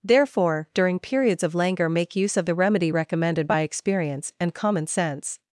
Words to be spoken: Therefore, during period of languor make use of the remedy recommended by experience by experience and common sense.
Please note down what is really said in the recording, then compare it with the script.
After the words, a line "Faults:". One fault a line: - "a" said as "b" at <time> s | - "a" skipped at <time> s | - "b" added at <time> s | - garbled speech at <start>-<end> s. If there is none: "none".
Therefore, during periods of languor make use of the remedy recommended by experience and common sense.
Faults:
- "period" said as "periods" at 1.0 s
- "by experience" skipped at 4.3 s